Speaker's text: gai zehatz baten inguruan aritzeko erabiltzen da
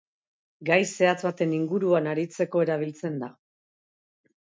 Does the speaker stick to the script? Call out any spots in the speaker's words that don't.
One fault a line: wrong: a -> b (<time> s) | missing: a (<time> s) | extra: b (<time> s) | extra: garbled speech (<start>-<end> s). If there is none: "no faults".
no faults